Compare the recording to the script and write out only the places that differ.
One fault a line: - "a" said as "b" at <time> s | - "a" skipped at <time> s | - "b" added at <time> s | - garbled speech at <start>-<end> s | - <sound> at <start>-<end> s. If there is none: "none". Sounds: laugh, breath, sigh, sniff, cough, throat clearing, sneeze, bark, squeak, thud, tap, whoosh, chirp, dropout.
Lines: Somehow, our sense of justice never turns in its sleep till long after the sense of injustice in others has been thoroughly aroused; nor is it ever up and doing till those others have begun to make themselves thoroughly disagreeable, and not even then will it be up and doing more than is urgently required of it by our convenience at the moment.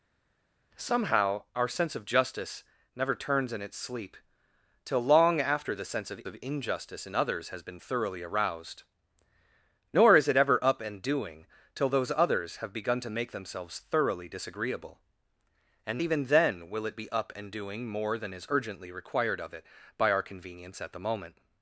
- "of" added at 6.2 s
- "not" skipped at 16.0 s